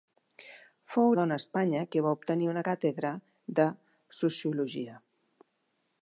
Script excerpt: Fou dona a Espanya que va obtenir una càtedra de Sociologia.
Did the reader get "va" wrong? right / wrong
right